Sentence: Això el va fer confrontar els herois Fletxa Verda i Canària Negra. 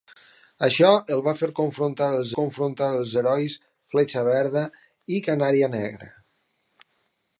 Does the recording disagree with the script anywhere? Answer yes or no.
yes